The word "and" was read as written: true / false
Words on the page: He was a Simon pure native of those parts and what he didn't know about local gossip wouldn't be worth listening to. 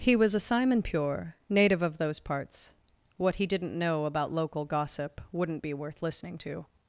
false